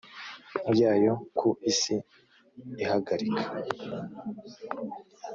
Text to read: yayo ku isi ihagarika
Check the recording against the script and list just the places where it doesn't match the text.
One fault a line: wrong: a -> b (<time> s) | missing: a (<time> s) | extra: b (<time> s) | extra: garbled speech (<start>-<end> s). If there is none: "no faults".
no faults